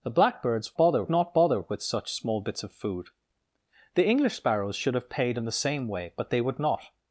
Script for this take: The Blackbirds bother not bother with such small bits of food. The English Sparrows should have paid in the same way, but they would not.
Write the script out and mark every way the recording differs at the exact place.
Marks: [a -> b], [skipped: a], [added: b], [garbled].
The Blackbirds bother not bother with such small bits of food. The English Sparrows should have paid in the same way, but they would not.